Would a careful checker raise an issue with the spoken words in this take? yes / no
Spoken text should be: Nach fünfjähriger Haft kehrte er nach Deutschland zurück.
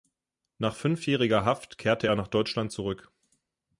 no